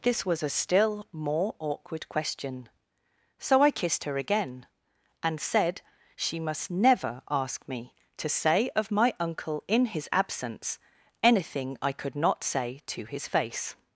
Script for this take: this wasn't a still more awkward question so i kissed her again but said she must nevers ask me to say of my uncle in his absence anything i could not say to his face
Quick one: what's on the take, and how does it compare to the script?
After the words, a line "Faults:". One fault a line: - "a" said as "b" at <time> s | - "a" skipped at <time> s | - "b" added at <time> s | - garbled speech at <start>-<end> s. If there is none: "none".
this was a still more awkward question so i kissed her again and said she must never ask me to say of my uncle in his absence anything i could not say to his face
Faults:
- "wasn't" said as "was" at 0.2 s
- "but" said as "and" at 5.2 s
- "nevers" said as "never" at 6.7 s